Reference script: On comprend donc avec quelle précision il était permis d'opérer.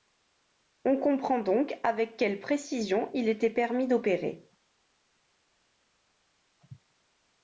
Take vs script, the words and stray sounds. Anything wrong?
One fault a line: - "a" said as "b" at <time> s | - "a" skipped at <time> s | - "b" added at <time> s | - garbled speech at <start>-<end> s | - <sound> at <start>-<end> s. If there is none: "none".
none